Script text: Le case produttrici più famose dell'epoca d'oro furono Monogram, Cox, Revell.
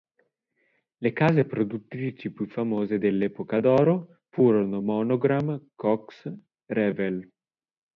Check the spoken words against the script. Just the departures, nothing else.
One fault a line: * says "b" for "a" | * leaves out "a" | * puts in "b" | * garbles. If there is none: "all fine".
all fine